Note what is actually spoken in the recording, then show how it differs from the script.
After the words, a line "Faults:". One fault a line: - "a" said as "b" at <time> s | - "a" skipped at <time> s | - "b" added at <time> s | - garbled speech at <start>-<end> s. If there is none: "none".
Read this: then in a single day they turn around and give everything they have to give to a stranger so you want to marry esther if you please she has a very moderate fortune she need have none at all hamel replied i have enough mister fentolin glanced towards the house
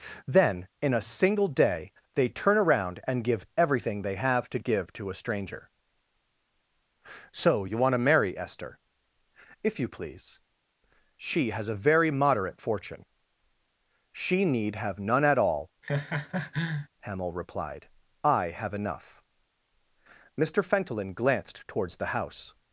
then in a single day they turn around and give everything they have to give to a stranger so you want to marry esther if you please she has a very moderate fortune she need have none at all hamel replied i have enough mister fentolin glanced towards the house
Faults:
none